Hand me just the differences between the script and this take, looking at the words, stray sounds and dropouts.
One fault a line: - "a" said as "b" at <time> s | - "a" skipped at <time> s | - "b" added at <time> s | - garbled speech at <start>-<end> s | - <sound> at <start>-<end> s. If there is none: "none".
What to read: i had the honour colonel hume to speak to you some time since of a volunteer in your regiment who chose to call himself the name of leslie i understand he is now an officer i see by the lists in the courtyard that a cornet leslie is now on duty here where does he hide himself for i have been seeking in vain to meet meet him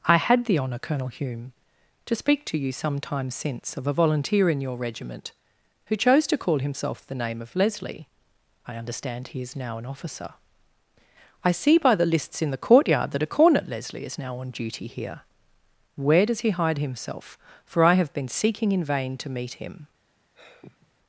- "meet" skipped at 19.5 s
- sigh at 20.3-20.9 s